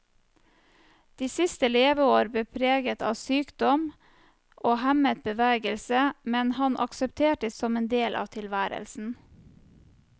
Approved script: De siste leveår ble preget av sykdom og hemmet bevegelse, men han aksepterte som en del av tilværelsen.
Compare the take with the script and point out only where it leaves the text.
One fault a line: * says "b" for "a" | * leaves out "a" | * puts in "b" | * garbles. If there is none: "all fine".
all fine